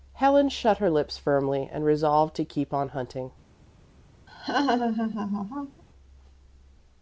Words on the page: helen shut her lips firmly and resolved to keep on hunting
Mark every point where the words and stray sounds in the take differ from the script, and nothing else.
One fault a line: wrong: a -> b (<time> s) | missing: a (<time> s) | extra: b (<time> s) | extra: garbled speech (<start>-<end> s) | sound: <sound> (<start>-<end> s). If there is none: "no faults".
sound: laugh (4.3-5.8 s)